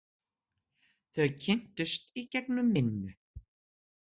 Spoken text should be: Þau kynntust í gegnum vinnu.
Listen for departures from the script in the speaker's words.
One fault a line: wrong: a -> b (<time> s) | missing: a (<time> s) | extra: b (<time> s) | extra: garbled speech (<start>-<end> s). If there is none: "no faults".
no faults